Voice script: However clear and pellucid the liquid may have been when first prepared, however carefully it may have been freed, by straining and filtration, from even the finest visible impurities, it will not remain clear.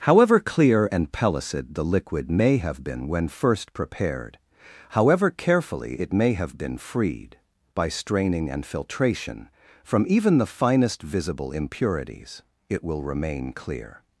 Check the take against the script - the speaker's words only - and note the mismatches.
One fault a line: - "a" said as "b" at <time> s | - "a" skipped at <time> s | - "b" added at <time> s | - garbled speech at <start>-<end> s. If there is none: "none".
- "not" skipped at 13.0 s